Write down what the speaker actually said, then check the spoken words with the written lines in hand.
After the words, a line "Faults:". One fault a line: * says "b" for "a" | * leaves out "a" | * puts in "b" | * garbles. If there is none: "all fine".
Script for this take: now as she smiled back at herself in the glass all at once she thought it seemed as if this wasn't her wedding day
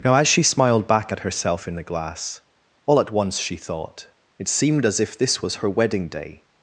now as she smiled back at herself in the glass all at once she thought it seemed as if this was her wedding day
Faults:
* says "was" for "wasn't"